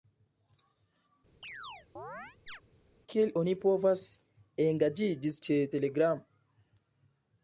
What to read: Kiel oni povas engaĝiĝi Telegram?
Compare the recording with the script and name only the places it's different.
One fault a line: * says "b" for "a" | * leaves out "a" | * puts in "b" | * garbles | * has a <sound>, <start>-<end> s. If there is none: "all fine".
* has a chirp, 1.4-2.6 s
* puts in "ĉe"